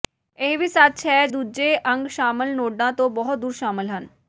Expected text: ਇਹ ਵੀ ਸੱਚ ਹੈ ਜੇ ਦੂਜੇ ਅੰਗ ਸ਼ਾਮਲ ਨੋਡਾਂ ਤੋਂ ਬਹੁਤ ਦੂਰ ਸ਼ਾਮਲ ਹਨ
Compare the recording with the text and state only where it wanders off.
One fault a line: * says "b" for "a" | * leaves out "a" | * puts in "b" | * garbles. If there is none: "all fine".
* leaves out "ਜੇ"